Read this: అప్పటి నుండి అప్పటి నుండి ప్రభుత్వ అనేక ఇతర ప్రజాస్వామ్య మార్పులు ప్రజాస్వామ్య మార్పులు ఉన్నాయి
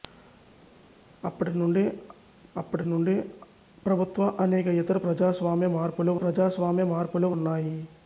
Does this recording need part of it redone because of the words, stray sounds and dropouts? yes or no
no